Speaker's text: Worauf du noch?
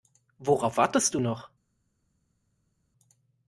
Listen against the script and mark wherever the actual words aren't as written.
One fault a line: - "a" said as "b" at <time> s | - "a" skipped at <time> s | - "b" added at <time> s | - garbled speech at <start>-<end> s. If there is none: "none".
- "wartest" added at 0.8 s